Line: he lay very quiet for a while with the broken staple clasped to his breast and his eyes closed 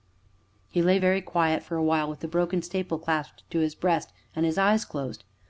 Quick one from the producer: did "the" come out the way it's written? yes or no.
yes